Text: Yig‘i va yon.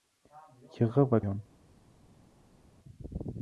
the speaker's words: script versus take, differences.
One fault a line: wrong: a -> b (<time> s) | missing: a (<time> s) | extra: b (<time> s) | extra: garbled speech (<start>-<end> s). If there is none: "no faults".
no faults